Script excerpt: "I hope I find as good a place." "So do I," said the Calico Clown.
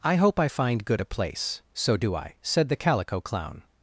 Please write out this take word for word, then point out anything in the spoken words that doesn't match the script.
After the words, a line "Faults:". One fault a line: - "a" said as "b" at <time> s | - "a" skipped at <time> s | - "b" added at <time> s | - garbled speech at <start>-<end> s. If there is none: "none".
"I hope I find good a place." "So do I," said the Calico Clown.
Faults:
- "as" skipped at 0.8 s